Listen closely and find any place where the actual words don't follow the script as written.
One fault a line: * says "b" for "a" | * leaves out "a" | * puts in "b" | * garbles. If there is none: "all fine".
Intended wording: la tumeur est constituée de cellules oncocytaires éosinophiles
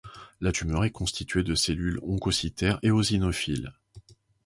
all fine